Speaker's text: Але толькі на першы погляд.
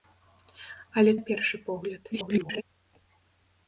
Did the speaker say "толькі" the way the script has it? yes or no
no